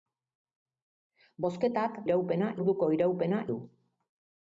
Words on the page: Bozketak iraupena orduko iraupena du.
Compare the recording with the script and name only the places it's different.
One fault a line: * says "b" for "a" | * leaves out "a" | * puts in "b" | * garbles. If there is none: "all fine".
all fine